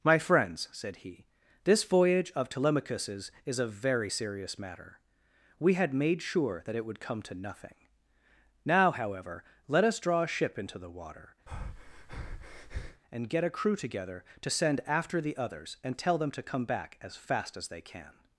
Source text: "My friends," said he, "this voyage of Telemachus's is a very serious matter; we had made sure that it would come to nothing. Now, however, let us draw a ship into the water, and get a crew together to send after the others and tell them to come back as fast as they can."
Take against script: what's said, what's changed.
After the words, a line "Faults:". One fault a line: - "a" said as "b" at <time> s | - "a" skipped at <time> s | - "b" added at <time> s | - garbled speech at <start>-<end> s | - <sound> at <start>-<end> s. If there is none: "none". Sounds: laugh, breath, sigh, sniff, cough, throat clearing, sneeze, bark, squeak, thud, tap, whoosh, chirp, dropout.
"My friends," said he, "this voyage of Telemachus's is a very serious matter; we had made sure that it would come to nothing. Now, however, let us draw a ship into the water, and get a crew together to send after the others and tell them to come back as fast as they can."
Faults:
- breath at 11.5-13.0 s